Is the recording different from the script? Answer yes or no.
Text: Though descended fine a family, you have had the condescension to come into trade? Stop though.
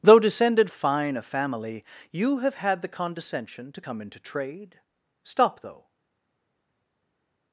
no